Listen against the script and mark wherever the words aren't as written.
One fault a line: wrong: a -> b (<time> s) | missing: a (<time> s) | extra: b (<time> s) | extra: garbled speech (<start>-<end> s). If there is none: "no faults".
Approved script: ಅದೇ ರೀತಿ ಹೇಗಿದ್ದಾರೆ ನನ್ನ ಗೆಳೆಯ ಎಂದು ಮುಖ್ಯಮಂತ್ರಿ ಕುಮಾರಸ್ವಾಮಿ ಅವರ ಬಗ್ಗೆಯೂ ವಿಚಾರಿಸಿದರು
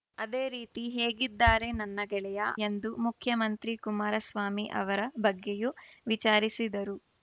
no faults